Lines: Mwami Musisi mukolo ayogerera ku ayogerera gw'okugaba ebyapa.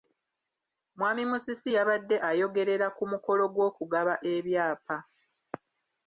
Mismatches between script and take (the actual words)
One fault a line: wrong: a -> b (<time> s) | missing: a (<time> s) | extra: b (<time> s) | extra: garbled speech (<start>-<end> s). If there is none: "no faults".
wrong: mukolo -> yabadde (1.8 s)
wrong: ayogerera -> mukolo (3.1 s)